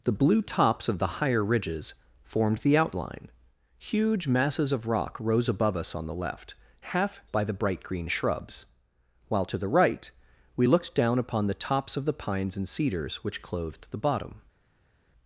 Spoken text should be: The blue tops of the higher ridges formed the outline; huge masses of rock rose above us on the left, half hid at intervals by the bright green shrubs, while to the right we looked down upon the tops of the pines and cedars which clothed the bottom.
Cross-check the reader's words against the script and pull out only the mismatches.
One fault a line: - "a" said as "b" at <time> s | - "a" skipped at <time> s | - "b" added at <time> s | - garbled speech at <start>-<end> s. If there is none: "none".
- "hid at intervals" skipped at 7.2 s